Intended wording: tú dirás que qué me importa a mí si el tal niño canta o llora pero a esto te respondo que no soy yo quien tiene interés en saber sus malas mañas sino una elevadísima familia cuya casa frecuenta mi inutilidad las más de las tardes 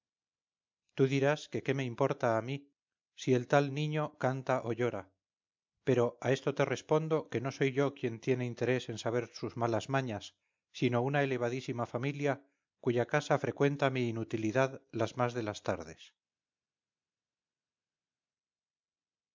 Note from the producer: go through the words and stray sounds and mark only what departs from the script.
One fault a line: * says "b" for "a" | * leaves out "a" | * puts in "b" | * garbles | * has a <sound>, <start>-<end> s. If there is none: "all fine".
all fine